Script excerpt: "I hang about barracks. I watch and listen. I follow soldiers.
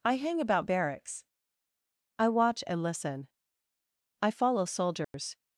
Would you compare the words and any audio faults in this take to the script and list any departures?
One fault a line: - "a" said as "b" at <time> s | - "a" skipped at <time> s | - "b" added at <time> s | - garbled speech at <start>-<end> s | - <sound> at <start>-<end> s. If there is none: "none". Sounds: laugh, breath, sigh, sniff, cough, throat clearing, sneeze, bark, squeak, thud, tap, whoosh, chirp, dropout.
- dropout at 5.0-5.1 s